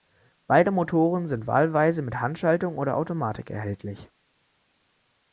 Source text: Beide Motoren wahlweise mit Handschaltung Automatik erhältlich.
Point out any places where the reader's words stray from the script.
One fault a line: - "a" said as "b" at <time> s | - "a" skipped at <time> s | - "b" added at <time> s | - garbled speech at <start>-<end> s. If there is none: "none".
- "sind" added at 1.3 s
- "oder" added at 2.8 s